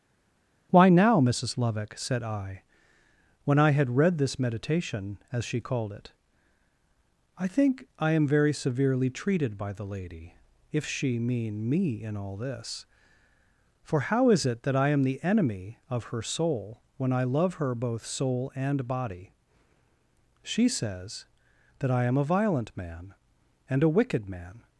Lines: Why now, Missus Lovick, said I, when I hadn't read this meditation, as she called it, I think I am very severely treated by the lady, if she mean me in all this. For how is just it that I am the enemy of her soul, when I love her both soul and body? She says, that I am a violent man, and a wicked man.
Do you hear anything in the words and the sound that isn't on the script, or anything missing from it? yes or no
yes